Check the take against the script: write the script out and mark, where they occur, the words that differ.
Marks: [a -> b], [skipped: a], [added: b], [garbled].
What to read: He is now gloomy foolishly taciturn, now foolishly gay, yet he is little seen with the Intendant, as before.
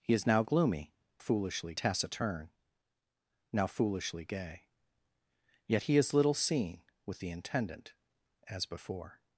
He is now gloomy foolishly taciturn, now foolishly gay, yet he is little seen with the Intendant, as before.